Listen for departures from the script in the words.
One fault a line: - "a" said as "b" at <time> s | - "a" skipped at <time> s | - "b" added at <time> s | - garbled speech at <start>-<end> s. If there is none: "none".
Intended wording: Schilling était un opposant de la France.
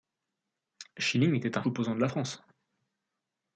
none